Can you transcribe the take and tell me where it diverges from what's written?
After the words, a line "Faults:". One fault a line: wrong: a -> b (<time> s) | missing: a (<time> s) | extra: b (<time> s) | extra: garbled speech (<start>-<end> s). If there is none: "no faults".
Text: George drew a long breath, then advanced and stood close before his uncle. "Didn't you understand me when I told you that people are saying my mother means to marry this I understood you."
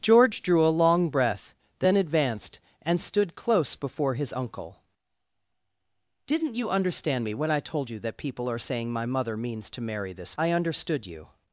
George drew a long breath, then advanced and stood close before his uncle. "Didn't you understand me when I told you that people are saying my mother means to marry this I understood you."
Faults:
no faults